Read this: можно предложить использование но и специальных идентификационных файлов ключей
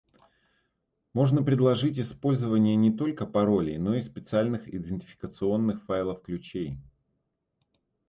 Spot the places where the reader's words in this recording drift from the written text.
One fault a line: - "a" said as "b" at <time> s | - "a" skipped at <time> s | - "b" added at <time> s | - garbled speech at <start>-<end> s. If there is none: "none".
- "не только паролей" added at 2.8 s